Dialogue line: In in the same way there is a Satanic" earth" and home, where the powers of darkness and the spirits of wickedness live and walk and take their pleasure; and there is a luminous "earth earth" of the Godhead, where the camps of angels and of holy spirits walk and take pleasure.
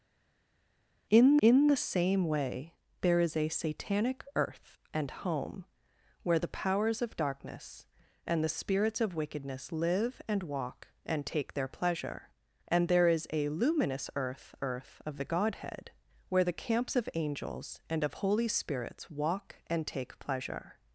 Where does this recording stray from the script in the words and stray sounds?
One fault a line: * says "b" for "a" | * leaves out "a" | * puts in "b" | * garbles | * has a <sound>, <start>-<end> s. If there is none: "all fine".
all fine